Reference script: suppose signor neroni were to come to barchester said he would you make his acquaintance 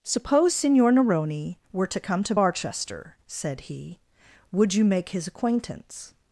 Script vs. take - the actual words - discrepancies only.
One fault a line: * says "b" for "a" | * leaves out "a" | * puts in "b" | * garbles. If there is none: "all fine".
all fine